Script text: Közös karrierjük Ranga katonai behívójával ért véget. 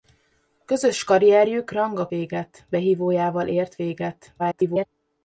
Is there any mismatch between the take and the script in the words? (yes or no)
yes